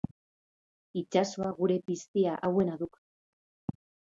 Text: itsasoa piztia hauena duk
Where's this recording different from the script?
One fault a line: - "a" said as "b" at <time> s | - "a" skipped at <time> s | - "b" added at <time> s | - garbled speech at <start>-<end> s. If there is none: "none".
- "gure" added at 1.6 s